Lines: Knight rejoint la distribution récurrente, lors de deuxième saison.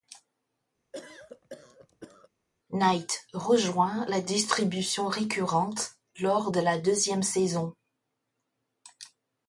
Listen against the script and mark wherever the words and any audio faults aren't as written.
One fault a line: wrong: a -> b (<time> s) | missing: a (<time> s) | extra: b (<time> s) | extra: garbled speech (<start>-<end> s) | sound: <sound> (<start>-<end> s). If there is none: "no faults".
sound: cough (0.9-2.3 s)
extra: la (6.6 s)